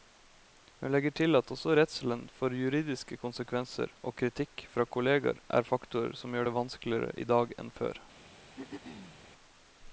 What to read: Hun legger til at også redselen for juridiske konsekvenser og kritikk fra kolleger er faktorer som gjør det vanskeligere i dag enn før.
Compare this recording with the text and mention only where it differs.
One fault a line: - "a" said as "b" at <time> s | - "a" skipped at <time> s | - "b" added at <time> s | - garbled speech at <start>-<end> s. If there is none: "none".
none